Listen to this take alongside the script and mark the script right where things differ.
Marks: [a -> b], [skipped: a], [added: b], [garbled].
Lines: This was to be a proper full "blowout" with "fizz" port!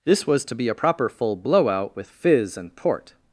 This was to be a proper full "blowout" with "fizz" [added: and] port!